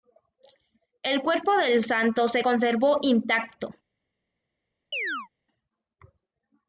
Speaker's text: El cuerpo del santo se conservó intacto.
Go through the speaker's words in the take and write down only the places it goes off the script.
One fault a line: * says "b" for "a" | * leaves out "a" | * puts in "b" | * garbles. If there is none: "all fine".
all fine